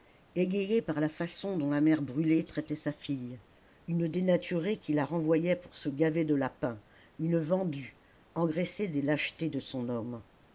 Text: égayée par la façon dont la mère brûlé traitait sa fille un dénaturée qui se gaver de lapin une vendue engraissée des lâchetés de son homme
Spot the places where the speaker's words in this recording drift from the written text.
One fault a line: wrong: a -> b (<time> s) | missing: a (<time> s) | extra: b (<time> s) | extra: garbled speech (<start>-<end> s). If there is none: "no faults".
wrong: un -> une (3.9 s)
extra: la renvoyait pour (4.9 s)